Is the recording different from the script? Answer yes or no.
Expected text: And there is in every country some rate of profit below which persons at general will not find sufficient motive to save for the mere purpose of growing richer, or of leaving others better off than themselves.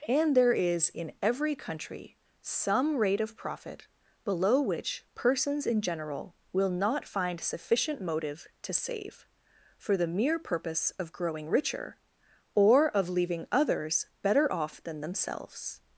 yes